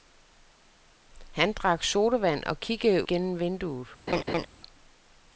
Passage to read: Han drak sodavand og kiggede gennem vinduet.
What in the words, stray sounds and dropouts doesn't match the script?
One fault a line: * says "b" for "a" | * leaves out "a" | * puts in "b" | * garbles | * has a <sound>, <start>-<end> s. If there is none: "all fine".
* has a laugh, 4.1-4.5 s